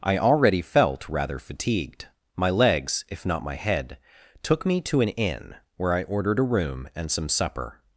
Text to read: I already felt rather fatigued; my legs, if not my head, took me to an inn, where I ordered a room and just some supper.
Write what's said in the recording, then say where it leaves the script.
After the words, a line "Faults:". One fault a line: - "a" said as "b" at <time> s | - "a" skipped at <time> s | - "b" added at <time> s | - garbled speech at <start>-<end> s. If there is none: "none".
I already felt rather fatigued; my legs, if not my head, took me to an inn, where I ordered a room and some supper.
Faults:
- "just" skipped at 7.1 s